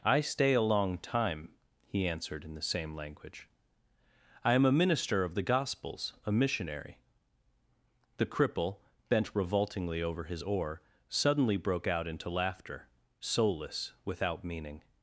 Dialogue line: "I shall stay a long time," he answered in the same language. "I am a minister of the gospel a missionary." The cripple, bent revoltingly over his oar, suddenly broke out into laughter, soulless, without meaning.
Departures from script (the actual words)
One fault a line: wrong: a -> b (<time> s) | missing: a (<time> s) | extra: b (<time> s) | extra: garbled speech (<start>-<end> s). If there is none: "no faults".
missing: shall (0.2 s)
wrong: gospel -> gospels (5.4 s)